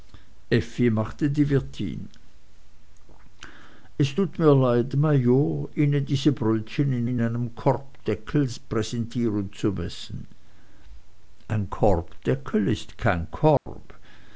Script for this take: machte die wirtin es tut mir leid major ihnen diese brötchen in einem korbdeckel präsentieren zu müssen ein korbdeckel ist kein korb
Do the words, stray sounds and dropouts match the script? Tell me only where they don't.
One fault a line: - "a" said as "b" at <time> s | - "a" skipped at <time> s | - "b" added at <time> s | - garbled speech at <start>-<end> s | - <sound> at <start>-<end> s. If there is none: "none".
- "in" added at 7.0 s
- dropout at 13.6-13.7 s